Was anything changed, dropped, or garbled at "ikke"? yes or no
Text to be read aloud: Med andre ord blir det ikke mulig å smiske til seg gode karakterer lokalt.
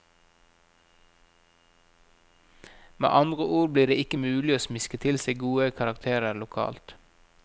no